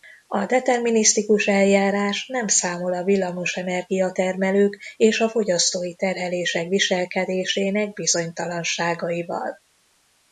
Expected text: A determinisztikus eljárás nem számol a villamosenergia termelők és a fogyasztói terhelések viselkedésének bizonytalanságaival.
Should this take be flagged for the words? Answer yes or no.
no